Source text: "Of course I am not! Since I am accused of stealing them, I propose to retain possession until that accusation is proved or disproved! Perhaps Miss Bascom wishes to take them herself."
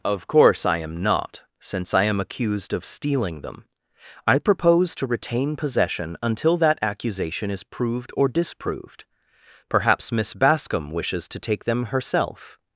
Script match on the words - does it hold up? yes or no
yes